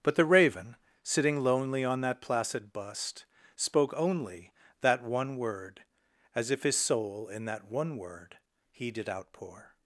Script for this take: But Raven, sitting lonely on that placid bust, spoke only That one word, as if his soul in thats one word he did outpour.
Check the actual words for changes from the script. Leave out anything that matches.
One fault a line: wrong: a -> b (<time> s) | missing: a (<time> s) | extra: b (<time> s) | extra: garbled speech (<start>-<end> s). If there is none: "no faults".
extra: the (0.1 s)
wrong: thats -> that (7.5 s)